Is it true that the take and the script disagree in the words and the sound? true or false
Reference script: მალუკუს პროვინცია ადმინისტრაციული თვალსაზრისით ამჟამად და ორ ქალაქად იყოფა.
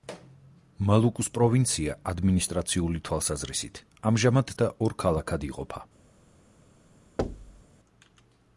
true